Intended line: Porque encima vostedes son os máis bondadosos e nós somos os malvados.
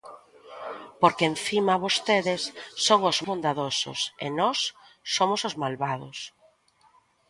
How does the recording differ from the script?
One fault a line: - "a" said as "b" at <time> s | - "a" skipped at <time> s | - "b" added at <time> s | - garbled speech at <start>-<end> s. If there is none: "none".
- "máis" skipped at 3.2 s